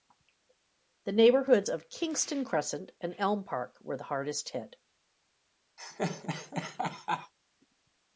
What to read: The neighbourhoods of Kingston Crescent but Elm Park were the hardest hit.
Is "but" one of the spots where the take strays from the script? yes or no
yes